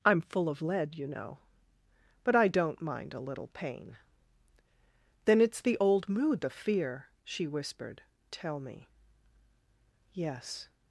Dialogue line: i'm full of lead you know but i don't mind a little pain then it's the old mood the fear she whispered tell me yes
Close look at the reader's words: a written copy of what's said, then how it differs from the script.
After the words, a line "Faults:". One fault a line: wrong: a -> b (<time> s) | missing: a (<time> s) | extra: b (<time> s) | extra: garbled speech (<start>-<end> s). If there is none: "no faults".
i'm full of lead you know but i don't mind a little pain then it's the old mood the fear she whispered tell me yes
Faults:
no faults